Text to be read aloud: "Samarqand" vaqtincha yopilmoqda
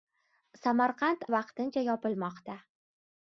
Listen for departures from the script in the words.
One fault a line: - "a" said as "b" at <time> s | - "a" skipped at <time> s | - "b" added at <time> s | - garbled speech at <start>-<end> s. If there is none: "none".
none